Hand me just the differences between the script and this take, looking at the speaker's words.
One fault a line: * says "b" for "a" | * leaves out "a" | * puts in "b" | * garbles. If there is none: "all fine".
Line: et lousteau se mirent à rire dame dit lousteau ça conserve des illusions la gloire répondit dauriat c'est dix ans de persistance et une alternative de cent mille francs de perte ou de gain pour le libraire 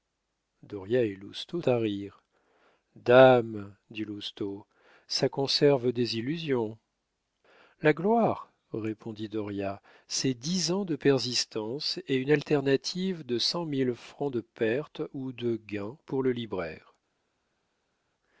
* leaves out "se mirent"